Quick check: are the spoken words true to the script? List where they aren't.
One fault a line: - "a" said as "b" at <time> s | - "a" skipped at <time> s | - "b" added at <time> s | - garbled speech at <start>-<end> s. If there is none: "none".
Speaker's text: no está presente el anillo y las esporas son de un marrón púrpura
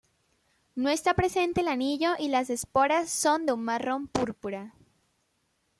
none